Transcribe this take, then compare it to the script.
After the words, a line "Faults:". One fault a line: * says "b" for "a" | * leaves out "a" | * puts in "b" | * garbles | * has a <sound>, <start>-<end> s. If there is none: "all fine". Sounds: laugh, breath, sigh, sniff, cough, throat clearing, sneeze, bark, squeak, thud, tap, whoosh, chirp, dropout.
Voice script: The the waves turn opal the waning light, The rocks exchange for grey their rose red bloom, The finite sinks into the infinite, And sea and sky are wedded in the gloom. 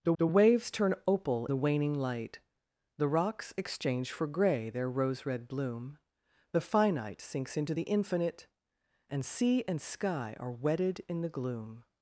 The the waves turn opal the waning light, The rocks exchange for grey their rose red bloom, The finite sinks into the infinite, And sea and sky are wedded in the gloom.
Faults:
all fine